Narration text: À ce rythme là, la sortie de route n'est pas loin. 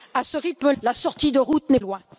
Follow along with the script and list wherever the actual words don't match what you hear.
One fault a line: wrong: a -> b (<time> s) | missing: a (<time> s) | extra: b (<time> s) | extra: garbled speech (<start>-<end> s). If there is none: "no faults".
missing: là (0.7 s)
missing: pas (1.8 s)